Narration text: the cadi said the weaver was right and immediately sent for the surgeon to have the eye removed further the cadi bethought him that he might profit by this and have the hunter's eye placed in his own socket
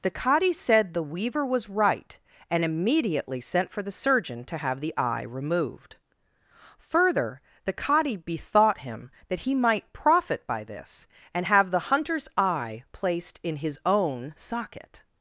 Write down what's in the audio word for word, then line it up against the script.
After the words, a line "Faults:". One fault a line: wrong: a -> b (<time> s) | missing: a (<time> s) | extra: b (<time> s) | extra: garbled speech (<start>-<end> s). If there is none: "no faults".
the cadi said the weaver was right and immediately sent for the surgeon to have the eye removed further the cadi bethought him that he might profit by this and have the hunter's eye placed in his own socket
Faults:
no faults